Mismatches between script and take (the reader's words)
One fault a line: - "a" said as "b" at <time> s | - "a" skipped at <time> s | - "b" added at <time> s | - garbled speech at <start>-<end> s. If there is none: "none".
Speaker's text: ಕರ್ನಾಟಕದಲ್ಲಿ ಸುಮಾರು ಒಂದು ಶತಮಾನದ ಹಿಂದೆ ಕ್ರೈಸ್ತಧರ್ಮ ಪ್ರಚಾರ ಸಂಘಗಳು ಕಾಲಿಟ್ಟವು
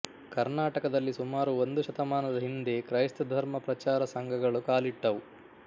none